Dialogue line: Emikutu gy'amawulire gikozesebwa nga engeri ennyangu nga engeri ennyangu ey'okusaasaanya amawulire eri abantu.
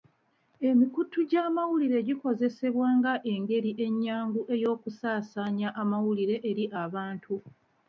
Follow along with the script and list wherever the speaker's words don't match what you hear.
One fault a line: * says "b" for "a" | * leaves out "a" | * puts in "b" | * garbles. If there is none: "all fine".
* leaves out "nga engeri ennyangu"